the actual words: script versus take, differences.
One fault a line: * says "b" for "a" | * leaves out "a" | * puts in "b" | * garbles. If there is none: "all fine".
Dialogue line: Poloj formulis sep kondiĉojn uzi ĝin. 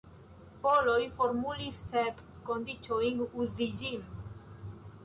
all fine